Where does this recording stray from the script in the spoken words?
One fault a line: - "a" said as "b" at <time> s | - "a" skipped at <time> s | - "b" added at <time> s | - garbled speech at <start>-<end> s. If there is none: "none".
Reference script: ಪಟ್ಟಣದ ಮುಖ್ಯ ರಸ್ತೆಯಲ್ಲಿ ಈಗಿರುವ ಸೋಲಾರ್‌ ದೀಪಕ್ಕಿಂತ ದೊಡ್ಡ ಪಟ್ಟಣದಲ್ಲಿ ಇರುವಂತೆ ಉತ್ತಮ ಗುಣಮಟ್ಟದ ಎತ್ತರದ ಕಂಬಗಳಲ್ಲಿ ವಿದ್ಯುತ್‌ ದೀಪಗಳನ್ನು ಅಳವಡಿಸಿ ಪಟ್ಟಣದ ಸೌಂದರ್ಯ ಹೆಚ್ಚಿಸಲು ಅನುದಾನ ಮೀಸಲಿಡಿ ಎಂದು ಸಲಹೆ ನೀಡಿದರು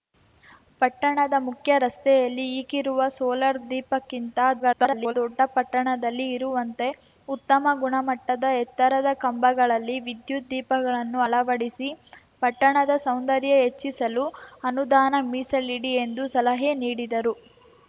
- garbled speech at 4.6-5.1 s